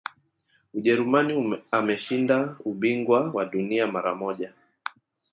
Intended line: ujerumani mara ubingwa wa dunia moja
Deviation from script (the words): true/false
true